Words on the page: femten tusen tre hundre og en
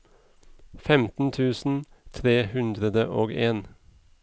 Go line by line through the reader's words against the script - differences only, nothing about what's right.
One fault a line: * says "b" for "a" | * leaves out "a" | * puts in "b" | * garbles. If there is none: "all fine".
all fine